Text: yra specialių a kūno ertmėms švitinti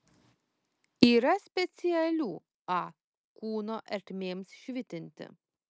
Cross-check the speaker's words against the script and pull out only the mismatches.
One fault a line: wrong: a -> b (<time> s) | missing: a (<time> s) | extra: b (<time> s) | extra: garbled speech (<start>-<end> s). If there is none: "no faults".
no faults